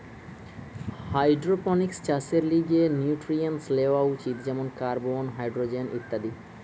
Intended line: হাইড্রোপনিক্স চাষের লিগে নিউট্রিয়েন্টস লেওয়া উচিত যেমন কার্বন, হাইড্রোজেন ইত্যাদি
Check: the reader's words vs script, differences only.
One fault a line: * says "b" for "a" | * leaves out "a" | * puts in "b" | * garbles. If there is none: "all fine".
all fine